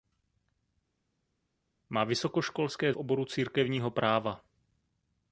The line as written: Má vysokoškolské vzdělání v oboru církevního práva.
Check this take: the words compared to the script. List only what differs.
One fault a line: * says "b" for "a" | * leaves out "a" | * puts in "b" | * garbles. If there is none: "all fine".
* leaves out "vzdělání"